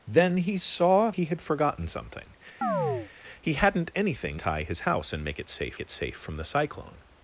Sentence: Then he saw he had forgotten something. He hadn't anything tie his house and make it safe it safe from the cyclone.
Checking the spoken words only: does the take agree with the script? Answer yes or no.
yes